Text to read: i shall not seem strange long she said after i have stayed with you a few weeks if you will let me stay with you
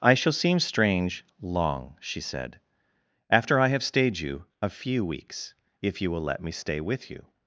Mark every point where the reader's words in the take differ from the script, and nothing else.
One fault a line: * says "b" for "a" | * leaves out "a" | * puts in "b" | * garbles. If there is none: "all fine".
* leaves out "not"
* leaves out "with"